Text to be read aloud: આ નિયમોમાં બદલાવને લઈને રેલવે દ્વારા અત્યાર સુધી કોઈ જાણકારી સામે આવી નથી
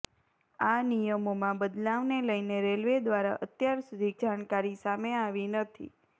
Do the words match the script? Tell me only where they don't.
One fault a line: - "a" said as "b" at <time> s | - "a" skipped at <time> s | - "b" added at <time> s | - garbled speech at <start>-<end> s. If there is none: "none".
- "કોઈ" skipped at 4.1 s